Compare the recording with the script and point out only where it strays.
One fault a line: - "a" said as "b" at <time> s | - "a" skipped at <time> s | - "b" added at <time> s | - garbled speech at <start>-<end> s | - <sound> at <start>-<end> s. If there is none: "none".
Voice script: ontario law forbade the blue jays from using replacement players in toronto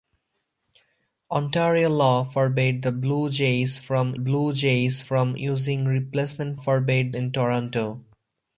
- "blue jays from" added at 4.1 s
- "players" said as "forbade" at 6.5 s